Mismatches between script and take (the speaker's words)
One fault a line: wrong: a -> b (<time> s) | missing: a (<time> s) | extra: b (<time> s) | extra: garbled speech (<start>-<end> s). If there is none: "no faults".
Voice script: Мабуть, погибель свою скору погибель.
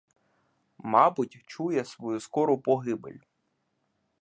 wrong: погибель -> чує (1.4 s)